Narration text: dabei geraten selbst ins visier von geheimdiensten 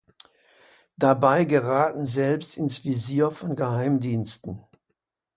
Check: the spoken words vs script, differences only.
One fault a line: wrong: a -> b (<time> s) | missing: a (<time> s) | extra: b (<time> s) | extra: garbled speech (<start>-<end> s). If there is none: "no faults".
no faults